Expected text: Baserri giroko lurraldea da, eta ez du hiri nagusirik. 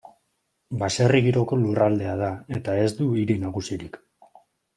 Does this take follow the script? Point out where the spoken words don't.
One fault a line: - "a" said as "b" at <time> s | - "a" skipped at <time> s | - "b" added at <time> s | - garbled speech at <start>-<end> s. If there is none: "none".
none